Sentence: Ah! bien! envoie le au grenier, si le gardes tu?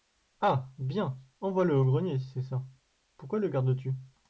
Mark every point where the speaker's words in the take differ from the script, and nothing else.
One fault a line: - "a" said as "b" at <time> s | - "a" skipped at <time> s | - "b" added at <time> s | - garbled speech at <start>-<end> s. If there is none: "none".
- "c'est ça pourquoi" added at 2.3 s